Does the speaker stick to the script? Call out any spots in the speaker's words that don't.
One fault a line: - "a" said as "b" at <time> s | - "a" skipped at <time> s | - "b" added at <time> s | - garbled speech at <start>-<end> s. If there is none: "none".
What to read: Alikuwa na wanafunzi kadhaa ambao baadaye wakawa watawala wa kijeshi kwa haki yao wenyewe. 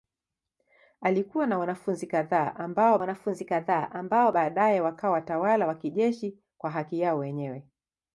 - "wanafunzi kadhaa ambao" added at 3.0 s